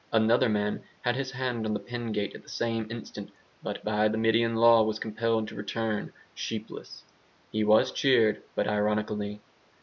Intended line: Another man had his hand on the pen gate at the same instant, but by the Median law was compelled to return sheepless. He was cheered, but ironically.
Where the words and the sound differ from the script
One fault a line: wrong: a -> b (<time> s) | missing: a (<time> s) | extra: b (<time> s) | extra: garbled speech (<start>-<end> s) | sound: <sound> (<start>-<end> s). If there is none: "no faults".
no faults